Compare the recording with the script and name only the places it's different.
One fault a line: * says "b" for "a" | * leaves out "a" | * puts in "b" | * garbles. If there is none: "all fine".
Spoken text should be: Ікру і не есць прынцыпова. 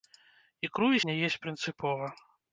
all fine